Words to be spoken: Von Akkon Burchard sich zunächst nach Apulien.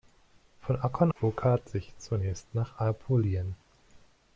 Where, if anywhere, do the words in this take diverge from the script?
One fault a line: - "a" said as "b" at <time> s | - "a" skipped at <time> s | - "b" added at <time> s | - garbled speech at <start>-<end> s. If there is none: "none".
none